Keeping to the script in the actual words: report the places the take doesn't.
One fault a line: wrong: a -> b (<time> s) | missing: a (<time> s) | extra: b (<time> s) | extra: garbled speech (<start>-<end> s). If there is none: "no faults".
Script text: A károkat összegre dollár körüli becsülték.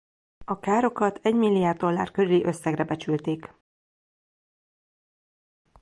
wrong: összegre -> egymilliárd (1.2 s)
extra: összegre (2.4 s)